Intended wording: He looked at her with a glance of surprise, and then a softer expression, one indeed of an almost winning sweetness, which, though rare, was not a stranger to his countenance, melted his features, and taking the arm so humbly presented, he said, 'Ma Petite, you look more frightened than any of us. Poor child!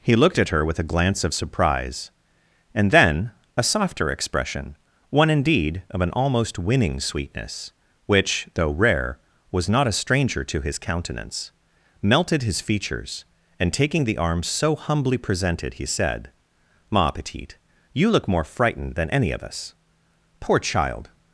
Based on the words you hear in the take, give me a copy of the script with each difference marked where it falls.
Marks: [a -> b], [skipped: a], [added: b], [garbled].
He looked at her with a glance of surprise, and then a softer expression, one indeed of an almost winning sweetness, which, though rare, was not a stranger to his countenance, melted his features, and taking the arm so humbly presented, he said, 'Ma Petite, you look more frightened than any of us. Poor child!